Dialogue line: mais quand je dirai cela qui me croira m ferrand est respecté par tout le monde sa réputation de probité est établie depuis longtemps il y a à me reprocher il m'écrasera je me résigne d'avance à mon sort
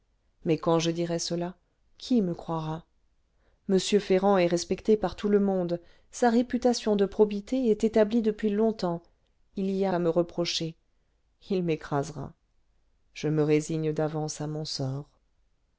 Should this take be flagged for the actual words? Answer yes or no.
no